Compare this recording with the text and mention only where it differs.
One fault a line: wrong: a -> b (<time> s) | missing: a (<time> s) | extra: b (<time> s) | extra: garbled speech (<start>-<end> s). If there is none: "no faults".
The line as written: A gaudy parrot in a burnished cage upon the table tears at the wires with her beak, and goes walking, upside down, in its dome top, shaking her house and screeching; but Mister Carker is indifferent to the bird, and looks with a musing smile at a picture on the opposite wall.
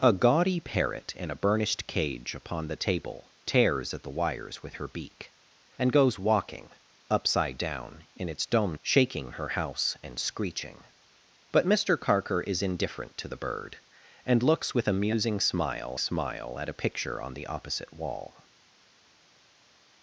missing: top (8.8 s)
extra: smile (16.0 s)